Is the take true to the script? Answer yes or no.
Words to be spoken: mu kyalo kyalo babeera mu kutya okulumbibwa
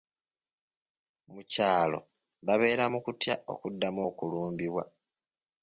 no